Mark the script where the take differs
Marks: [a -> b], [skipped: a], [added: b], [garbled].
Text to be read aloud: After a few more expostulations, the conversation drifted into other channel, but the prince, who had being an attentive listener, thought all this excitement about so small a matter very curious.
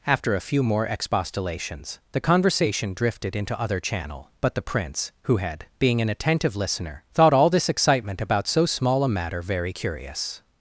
After a few more expostulations, the conversation drifted into other channel, but the prince, who had being an attentive listener, thought all this excitement about so small a matter very curious.